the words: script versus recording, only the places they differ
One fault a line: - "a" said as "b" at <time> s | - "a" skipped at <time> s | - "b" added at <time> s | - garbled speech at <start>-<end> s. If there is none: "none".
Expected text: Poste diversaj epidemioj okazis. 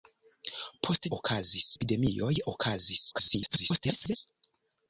- "diversaj" said as "okazis" at 1.2 s
- garbled speech at 3.1-4.2 s